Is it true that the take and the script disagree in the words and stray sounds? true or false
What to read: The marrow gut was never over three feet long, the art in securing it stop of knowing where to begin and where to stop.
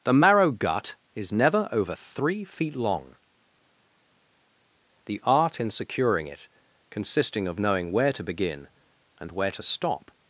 true